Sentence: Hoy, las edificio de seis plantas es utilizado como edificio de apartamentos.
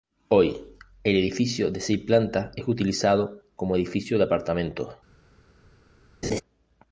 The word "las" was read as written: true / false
false